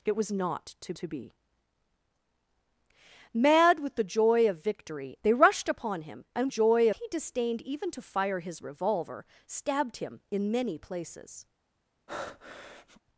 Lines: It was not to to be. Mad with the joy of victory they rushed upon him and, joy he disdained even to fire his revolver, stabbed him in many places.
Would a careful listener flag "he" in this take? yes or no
no